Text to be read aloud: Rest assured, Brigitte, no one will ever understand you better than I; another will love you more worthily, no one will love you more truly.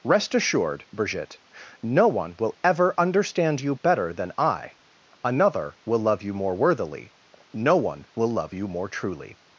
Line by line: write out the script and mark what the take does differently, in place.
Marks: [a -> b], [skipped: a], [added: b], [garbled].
Rest assured, Brigitte, no one will ever understand you better than I; another will love you more worthily, no one will love you more truly.